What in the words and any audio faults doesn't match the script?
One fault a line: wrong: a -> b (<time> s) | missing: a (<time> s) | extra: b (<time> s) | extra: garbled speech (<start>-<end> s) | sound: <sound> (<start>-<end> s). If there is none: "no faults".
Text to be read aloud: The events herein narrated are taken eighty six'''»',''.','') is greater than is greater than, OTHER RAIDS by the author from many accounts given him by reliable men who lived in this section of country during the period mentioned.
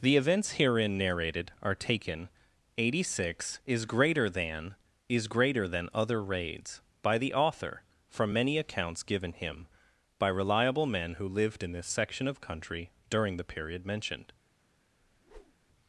sound: whoosh (15.0-15.7 s)